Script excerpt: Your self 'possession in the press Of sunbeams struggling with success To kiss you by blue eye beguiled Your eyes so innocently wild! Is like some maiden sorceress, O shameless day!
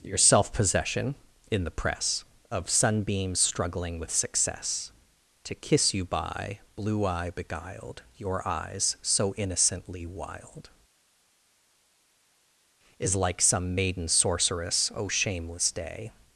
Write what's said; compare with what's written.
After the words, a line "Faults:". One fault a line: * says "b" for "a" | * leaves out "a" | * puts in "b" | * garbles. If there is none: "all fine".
Your self 'possession in the press Of sunbeams struggling with success To kiss you by blue eye beguiled Your eyes so innocently wild! Is like some maiden sorceress, O shameless day!
Faults:
all fine